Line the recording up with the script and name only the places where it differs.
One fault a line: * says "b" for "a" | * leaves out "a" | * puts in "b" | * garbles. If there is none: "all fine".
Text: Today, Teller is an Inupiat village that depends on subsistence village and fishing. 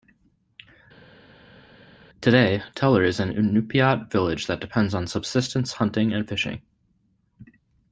* says "hunting" for "village"